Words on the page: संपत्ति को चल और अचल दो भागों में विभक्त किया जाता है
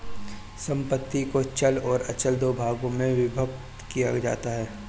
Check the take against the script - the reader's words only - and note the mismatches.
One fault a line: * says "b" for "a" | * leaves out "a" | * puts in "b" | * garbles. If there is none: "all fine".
all fine